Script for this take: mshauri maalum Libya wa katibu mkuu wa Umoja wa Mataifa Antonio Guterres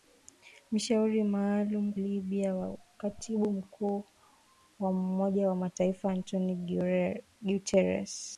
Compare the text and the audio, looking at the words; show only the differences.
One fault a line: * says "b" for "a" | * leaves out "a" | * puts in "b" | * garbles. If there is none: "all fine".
all fine